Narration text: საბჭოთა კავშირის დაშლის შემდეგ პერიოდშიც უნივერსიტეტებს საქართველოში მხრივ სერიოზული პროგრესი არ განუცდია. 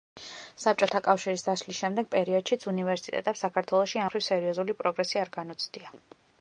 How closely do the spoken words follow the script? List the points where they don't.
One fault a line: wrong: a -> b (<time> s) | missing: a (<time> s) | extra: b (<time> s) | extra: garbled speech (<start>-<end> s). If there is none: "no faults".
no faults